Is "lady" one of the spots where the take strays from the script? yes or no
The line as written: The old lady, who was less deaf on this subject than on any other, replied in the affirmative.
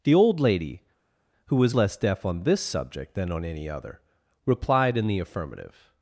no